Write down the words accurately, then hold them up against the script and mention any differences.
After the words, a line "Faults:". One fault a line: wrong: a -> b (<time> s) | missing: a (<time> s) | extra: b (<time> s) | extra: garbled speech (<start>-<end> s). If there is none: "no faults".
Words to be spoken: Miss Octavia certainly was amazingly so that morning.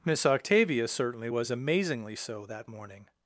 Miss Octavia certainly was amazingly so that morning.
Faults:
no faults